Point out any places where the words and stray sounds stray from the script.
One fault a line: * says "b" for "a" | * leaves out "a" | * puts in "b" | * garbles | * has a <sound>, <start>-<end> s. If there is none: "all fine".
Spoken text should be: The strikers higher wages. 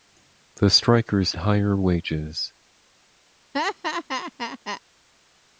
* has a laugh, 3.5-4.8 s